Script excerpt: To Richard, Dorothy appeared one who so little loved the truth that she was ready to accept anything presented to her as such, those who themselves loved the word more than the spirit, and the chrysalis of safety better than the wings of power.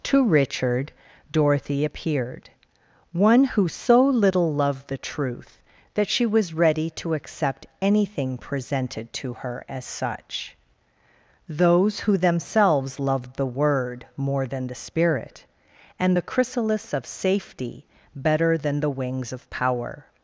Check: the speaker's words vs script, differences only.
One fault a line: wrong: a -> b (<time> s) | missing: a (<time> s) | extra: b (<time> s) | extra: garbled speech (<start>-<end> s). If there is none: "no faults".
no faults